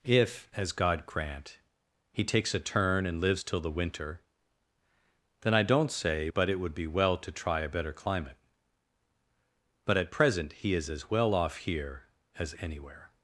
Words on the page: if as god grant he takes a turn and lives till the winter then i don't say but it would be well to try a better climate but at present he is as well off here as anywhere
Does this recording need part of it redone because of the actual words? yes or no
no